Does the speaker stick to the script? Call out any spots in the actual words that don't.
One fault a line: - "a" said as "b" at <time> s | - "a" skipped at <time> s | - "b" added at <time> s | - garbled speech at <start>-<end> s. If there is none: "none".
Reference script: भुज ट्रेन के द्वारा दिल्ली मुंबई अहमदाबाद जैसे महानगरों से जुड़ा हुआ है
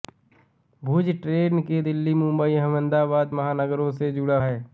- "द्वारा" skipped at 1.8 s
- "जैसे" skipped at 3.3 s
- "हुआ" skipped at 4.4 s